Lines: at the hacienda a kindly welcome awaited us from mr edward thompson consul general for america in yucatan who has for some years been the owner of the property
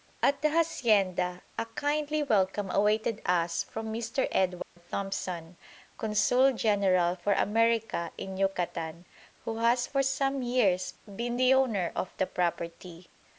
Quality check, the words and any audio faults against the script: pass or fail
fail